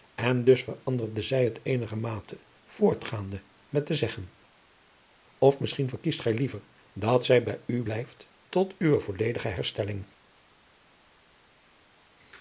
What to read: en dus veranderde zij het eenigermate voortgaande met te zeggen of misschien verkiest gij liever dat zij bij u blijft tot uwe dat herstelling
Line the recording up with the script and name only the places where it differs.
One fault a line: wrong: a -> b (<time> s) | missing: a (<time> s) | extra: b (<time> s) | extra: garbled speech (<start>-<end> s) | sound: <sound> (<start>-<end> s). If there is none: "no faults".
wrong: dat -> volledige (9.0 s)